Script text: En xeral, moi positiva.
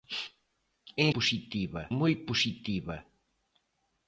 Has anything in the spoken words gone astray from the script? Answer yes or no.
yes